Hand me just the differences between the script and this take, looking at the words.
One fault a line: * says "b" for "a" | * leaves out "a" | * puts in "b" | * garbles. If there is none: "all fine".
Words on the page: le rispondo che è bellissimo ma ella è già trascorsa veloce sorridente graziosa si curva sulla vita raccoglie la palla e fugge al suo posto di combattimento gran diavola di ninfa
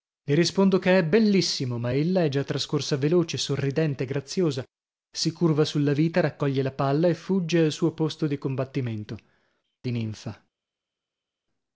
* leaves out "gran diavola"